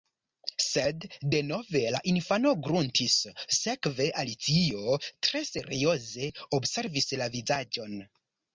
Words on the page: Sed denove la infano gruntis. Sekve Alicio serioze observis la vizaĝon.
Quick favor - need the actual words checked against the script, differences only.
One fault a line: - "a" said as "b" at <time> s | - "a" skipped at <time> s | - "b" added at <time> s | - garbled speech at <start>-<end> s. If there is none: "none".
- "tre" added at 5.3 s